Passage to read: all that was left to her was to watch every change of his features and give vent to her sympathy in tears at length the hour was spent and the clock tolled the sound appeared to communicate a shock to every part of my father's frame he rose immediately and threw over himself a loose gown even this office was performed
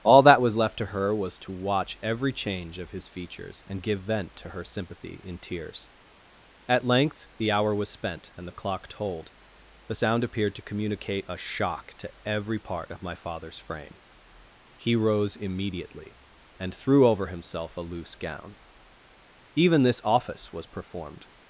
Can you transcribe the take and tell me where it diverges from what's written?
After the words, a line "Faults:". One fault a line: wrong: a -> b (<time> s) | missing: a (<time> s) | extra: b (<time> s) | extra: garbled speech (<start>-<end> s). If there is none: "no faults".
all that was left to her was to watch every change of his features and give vent to her sympathy in tears at length the hour was spent and the clock tolled the sound appeared to communicate a shock to every part of my father's frame he rose immediately and threw over himself a loose gown even this office was performed
Faults:
no faults